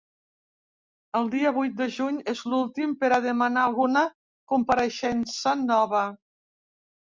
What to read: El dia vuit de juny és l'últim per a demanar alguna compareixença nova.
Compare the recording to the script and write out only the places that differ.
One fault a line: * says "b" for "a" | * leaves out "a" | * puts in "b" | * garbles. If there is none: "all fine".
all fine